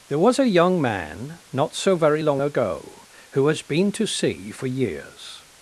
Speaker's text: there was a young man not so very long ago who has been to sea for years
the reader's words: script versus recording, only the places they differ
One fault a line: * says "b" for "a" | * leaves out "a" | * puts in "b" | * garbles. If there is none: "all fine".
all fine